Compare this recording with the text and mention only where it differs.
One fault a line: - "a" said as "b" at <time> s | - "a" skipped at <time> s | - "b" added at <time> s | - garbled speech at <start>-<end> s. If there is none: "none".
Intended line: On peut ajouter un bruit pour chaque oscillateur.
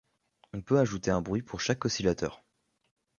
none